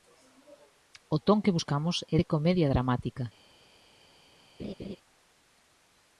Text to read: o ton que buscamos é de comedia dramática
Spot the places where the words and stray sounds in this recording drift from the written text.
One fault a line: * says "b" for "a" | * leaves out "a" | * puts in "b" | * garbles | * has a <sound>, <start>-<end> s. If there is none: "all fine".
* has a laugh, 4.6-5.0 s